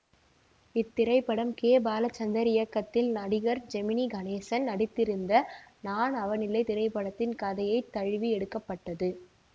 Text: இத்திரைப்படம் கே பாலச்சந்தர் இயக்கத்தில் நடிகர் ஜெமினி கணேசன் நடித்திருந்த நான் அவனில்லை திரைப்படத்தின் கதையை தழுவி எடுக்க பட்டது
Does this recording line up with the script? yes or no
yes